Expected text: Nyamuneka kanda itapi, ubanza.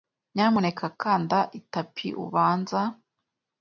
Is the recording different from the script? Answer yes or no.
no